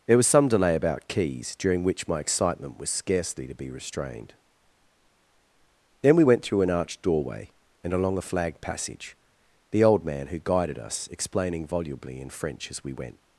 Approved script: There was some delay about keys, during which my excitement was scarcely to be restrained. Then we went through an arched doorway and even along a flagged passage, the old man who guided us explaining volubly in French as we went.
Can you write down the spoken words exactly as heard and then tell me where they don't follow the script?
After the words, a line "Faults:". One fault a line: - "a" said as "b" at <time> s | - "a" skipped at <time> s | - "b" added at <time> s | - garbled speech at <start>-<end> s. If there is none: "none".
There was some delay about keys, during which my excitement was scarcely to be restrained. Then we went through an arched doorway and along a flagged passage, the old man who guided us explaining volubly in French as we went.
Faults:
- "even" skipped at 7.9 s